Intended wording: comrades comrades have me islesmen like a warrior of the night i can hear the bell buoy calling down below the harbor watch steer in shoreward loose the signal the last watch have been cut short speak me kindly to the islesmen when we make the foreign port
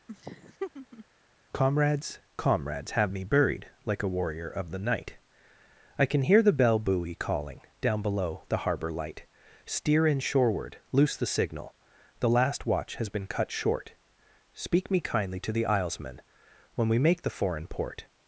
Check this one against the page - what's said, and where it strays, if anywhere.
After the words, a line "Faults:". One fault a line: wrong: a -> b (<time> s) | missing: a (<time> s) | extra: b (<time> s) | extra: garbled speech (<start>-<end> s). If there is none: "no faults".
comrades comrades have me buried like a warrior of the night i can hear the bell buoy calling down below the harbor light steer in shoreward loose the signal the last watch has been cut short speak me kindly to the islesmen when we make the foreign port
Faults:
wrong: islesmen -> buried (3.2 s)
wrong: watch -> light (8.9 s)
wrong: have -> has (13.0 s)